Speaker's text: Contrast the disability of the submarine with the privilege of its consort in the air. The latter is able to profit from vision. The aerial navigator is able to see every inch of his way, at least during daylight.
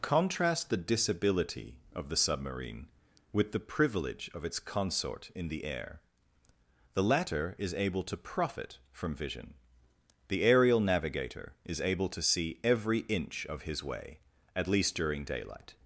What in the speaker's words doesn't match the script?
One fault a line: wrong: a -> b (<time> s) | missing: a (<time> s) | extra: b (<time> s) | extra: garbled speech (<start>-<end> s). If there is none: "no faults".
no faults